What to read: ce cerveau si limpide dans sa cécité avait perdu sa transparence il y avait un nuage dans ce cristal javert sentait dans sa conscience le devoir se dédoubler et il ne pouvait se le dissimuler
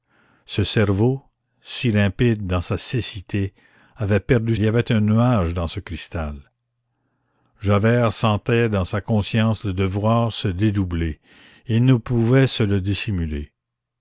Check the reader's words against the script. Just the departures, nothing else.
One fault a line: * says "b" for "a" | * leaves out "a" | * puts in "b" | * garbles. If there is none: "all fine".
* leaves out "sa transparence il"